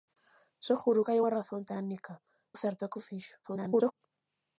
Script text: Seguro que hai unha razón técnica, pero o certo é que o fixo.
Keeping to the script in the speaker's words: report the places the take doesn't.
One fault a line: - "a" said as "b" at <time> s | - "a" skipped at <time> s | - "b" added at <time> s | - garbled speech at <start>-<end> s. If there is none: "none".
- "pero" skipped at 2.1 s
- garbled speech at 3.4-3.9 s